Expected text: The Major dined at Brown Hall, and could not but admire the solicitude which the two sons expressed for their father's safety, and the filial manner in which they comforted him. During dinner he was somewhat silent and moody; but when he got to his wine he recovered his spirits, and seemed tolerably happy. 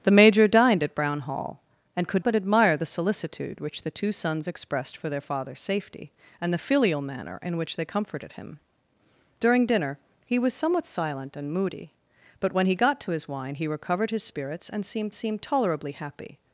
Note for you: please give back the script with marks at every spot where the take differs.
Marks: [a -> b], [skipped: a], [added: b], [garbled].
The Major dined at Brown Hall, and could [skipped: not] but admire the solicitude which the two sons expressed for their father's safety, and the filial manner in which they comforted him. During dinner he was somewhat silent and moody; but when he got to his wine he recovered his spirits, and seemed [added: seemed] tolerably happy.